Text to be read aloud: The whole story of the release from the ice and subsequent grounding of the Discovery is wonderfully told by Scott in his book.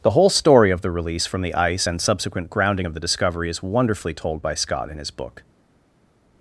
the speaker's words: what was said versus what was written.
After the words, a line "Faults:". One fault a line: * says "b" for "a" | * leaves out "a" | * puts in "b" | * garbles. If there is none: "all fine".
The whole story of the release from the ice and subsequent grounding of the Discovery is wonderfully told by Scott in his book.
Faults:
all fine